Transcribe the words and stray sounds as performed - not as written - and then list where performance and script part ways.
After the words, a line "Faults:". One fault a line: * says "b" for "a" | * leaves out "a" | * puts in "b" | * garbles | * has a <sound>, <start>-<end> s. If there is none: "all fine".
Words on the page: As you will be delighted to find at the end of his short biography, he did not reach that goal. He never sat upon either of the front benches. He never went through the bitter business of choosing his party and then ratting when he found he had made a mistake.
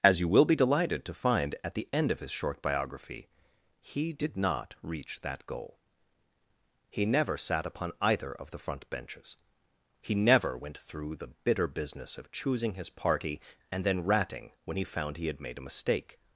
As you will be delighted to find at the end of his short biography, he did not reach that goal. He never sat upon either of the front benches. He never went through the bitter business of choosing his party and then ratting when he found he had made a mistake.
Faults:
all fine